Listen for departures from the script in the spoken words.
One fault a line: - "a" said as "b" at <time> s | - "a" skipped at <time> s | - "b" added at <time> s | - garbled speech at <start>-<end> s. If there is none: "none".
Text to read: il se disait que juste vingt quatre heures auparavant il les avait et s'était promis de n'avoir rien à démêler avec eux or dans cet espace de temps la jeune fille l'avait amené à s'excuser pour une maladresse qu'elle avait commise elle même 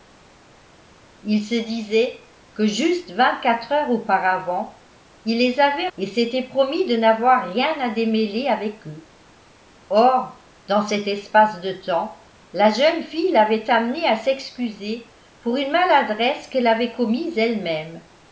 none